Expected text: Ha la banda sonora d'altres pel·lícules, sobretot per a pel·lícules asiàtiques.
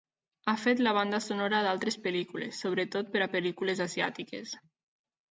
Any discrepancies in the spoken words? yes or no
yes